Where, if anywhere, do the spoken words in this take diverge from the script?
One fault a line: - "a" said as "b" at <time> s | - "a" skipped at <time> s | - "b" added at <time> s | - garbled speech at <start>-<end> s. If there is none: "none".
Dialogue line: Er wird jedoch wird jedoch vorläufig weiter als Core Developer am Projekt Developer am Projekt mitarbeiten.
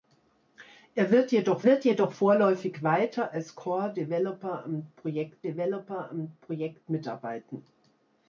none